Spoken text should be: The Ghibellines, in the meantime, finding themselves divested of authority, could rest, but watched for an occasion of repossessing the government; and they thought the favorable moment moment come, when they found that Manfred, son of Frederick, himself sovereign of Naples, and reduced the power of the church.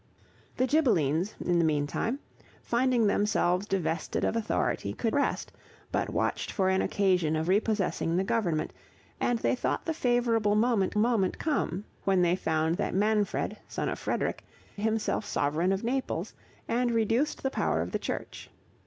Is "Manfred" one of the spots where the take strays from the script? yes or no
no